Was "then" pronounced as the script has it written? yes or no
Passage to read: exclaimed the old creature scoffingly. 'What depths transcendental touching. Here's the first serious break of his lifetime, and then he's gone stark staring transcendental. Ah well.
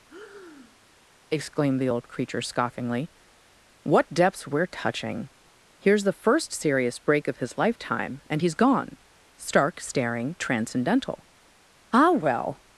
no